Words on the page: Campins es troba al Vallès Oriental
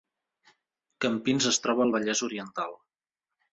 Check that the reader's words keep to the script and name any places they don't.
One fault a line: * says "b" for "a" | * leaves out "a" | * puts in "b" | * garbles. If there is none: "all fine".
all fine